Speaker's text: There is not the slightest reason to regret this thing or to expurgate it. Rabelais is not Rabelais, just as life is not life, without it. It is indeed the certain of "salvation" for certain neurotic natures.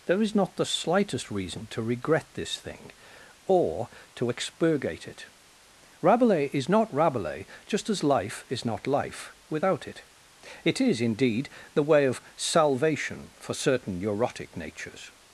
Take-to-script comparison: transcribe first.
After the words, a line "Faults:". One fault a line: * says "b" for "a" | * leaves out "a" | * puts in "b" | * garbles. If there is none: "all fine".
There is not the slightest reason to regret this thing or to expurgate it. Rabelais is not Rabelais, just as life is not life, without it. It is indeed the way of "salvation" for certain neurotic natures.
Faults:
* says "way" for "certain"